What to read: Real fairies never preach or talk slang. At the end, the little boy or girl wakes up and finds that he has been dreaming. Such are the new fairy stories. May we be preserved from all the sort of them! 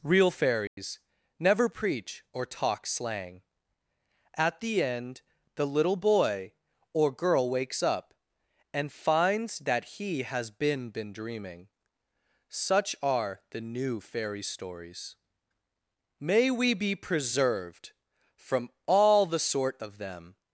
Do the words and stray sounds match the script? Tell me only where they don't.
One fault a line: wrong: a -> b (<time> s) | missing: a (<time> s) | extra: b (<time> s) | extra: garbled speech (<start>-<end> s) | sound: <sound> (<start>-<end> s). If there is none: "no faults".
sound: dropout (0.7-0.8 s)
extra: been (10.9 s)